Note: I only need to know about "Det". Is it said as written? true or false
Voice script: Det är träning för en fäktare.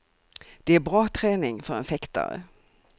true